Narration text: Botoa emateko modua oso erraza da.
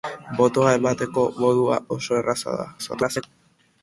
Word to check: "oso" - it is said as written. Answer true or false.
true